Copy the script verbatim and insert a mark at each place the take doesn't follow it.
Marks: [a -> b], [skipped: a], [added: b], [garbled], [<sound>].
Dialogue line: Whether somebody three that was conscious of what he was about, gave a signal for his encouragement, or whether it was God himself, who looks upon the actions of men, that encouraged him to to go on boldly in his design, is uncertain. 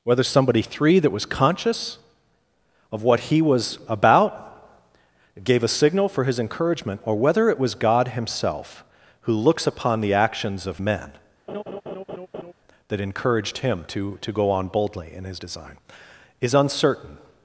Whether somebody three that was conscious of what he was about, gave a signal for his encouragement, or whether it was God himself, who looks upon the actions of men, [laugh] that encouraged him to to go on boldly in his design, is uncertain.